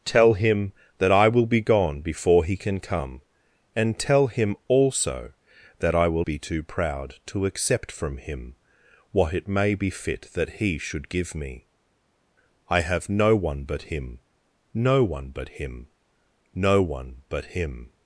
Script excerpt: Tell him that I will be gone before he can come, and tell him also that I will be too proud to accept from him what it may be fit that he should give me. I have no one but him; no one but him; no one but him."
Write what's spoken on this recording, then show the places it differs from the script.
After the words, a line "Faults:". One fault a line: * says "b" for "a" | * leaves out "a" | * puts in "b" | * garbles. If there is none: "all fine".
Tell him that I will be gone before he can come, and tell him also that I will be too proud to accept from him what it may be fit that he should give me. I have no one but him; no one but him; no one but him."
Faults:
all fine